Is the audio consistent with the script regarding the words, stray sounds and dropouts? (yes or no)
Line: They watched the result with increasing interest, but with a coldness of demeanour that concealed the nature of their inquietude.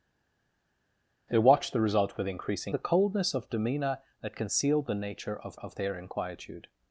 no